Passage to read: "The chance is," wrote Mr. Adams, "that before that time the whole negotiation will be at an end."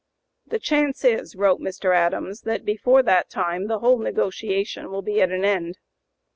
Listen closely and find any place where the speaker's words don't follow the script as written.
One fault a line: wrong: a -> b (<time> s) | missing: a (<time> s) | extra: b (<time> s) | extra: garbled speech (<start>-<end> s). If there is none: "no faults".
no faults